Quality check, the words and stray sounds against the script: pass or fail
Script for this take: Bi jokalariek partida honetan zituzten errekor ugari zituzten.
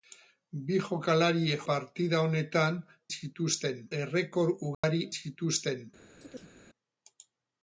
fail